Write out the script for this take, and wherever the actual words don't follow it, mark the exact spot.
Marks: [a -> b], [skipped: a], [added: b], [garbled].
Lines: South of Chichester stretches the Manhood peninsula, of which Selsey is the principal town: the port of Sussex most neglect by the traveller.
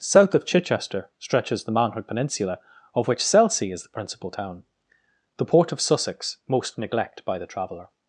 South of Chichester stretches the Manhood peninsula, of which Selsey is the principal town: the port of Sussex most neglect by the traveller.